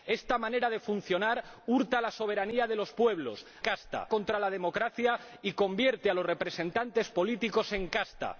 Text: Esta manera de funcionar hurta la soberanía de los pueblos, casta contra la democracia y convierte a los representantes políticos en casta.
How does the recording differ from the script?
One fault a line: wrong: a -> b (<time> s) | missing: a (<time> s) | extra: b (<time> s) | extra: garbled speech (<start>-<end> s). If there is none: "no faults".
no faults